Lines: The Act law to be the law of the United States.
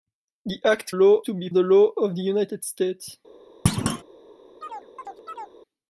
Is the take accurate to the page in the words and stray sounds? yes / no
no